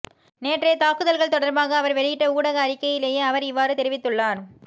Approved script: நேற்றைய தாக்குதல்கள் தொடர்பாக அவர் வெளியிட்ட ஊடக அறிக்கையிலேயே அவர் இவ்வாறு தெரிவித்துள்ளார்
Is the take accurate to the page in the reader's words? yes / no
yes